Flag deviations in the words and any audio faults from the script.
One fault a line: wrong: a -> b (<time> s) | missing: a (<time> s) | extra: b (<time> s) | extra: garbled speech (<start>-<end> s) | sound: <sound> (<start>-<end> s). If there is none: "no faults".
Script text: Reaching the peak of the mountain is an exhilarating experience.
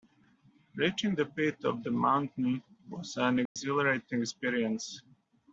wrong: is -> was (2.9 s)
sound: dropout (3.5-3.6 s)